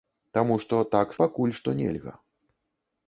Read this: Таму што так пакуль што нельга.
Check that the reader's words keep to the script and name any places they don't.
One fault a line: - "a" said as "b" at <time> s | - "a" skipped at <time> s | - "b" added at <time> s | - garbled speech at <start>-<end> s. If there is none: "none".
none